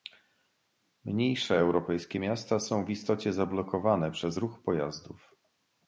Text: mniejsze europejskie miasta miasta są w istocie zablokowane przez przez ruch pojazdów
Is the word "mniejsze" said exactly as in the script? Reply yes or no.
yes